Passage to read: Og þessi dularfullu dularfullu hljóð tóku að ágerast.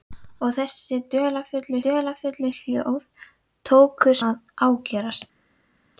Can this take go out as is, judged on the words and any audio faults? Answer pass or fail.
pass